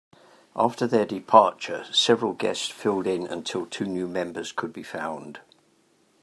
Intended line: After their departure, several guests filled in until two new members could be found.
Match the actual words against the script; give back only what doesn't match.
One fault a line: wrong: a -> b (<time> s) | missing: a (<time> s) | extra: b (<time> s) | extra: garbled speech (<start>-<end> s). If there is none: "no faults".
no faults